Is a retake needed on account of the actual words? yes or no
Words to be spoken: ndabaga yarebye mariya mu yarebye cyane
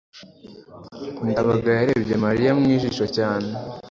yes